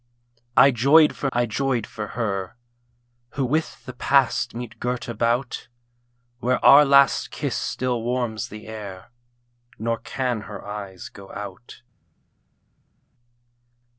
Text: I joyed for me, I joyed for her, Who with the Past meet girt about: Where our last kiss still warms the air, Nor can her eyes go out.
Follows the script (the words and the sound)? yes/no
no